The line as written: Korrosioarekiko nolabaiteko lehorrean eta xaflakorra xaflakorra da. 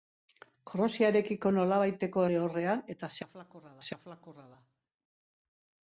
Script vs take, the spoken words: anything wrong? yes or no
no